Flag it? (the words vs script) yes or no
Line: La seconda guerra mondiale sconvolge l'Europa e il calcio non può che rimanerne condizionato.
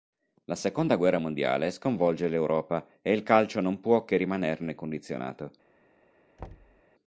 no